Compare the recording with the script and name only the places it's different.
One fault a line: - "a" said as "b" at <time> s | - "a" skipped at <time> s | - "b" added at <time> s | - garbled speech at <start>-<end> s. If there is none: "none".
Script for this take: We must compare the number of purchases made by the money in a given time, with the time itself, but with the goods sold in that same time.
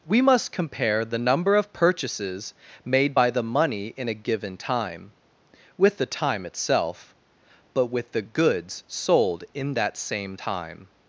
none